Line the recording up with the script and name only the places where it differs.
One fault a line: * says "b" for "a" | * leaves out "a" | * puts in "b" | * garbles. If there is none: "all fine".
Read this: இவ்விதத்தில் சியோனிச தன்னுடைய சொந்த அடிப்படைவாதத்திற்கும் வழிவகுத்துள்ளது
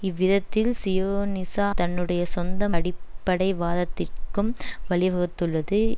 all fine